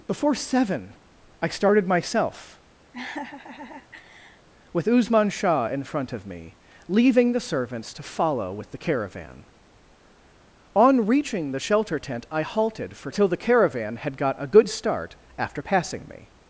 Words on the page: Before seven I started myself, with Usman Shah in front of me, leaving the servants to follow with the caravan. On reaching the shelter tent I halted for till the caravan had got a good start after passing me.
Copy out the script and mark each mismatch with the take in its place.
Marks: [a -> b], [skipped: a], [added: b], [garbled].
Before seven I started myself, with Usman Shah in front of me, leaving the servants to follow with the caravan. On reaching the shelter tent I halted for till the caravan had got a good start after passing me.